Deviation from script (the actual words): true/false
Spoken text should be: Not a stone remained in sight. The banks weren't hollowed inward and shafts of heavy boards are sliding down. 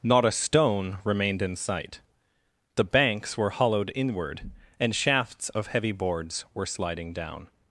true